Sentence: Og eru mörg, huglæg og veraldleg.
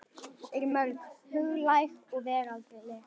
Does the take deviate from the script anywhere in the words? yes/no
no